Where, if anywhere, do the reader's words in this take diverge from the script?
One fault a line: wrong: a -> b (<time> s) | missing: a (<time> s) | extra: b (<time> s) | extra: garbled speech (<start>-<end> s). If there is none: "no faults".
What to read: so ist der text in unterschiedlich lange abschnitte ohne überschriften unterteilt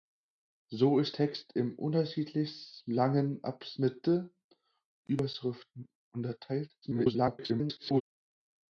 missing: der (1.2 s)
missing: ohne (4.3 s)
extra: garbled speech (6.8-8.0 s)